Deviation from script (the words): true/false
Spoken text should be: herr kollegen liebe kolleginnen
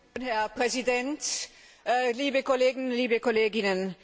true